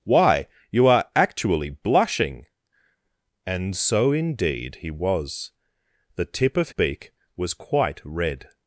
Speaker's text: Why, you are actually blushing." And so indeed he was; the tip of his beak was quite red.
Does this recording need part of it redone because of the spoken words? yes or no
yes